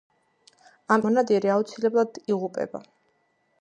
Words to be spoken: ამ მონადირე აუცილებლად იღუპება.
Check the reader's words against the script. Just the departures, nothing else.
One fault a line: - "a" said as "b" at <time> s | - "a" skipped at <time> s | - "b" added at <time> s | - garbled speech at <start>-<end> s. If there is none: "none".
none